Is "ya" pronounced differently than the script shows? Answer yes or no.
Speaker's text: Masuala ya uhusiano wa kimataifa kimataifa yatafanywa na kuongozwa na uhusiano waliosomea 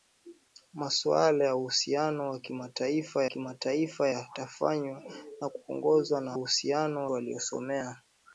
no